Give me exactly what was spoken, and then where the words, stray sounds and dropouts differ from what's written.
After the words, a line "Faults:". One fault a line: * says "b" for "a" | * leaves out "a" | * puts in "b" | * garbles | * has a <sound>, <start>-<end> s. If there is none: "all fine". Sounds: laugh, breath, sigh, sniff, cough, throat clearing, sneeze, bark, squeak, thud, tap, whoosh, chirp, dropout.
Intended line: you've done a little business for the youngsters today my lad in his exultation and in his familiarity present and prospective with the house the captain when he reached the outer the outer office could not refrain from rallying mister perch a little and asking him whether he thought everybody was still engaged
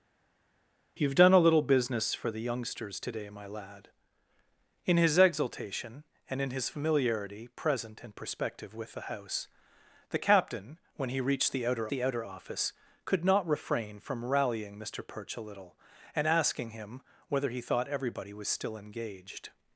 you've done a little business for the youngsters today my lad in his exultation and in his familiarity present and prospective with the house the captain when he reached the outer the outer office could not refrain from rallying mister perch a little and asking him whether he thought everybody was still engaged
Faults:
all fine